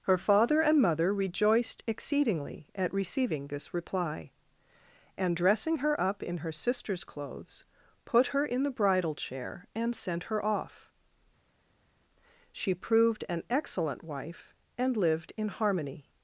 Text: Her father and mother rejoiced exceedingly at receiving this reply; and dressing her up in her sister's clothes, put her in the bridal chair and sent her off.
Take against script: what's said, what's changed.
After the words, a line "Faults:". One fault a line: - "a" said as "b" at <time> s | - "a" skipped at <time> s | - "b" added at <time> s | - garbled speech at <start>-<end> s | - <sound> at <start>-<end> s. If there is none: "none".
Her father and mother rejoiced exceedingly at receiving this reply; and dressing her up in her sister's clothes, put her in the bridal chair and sent her off. She proved an excellent wife, and lived in harmony
Faults:
- "She proved an excellent wife and lived in harmony" added at 12.5 s